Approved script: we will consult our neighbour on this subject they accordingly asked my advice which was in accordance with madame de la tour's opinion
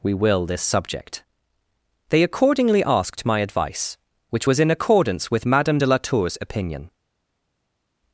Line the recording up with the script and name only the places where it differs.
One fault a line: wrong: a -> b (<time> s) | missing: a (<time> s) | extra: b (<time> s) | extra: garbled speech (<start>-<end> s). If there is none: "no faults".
missing: consult our neighbour on (0.5 s)